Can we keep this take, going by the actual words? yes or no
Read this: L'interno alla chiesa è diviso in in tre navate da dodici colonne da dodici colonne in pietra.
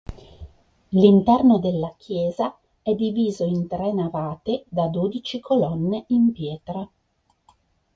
no